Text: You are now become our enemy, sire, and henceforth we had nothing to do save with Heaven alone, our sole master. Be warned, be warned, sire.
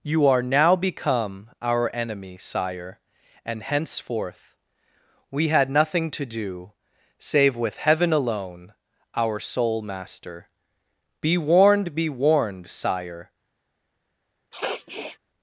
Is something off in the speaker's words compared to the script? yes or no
no